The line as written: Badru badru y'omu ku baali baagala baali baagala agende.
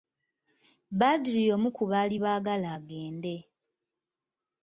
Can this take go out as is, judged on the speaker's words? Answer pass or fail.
fail